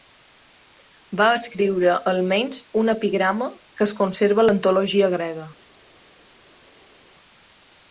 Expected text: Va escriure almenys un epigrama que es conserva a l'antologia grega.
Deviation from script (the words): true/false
false